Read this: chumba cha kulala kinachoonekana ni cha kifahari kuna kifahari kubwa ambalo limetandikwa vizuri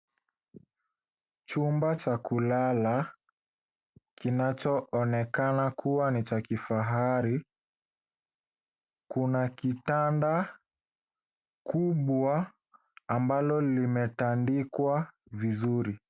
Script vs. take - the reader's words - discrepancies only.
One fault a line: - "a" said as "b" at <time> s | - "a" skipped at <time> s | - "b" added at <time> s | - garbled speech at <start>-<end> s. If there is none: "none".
- "kuwa" added at 5.7 s
- "kifahari" said as "kitanda" at 9.5 s